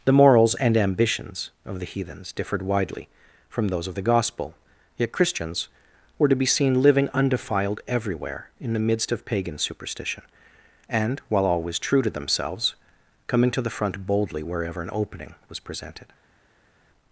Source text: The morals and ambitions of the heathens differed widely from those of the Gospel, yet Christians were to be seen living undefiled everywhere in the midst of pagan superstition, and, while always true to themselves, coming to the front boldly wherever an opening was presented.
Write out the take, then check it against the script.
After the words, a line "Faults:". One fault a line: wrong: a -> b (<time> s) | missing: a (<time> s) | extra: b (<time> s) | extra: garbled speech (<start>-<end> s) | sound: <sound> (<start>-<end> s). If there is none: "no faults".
The morals and ambitions of the heathens differed widely from those of the Gospel, yet Christians were to be seen living undefiled everywhere in the midst of pagan superstition, and, while always true to themselves, coming to the front boldly wherever an opening was presented.
Faults:
no faults